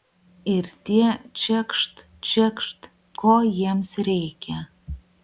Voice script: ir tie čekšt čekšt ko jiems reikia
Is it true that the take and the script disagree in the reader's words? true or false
false